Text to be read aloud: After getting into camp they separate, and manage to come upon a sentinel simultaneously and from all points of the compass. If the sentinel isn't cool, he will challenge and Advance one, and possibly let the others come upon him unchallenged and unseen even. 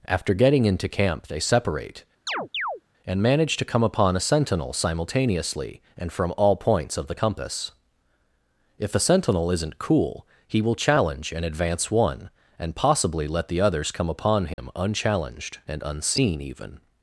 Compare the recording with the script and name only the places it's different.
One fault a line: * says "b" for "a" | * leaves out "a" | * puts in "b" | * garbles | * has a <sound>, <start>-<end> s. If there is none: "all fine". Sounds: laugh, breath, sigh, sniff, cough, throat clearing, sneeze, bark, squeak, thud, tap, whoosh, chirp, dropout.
* has a chirp, 2.3-2.8 s
* says "a" for "the"
* has a dropout, 14.5-14.6 s